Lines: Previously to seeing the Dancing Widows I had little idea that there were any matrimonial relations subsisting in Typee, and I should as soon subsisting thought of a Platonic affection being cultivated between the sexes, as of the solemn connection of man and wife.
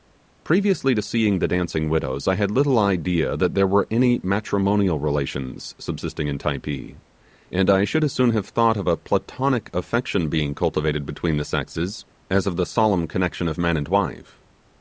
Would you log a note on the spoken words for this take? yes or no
yes